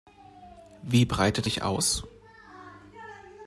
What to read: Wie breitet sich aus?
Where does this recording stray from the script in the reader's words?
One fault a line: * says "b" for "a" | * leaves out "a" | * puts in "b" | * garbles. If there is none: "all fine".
all fine